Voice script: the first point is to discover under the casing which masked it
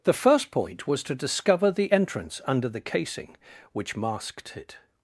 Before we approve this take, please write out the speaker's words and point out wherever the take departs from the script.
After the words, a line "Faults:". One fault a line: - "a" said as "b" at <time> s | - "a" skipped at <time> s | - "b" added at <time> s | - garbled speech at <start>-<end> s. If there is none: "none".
the first point was to discover the entrance under the casing which masked it
Faults:
- "is" said as "was" at 0.9 s
- "the entrance" added at 1.7 s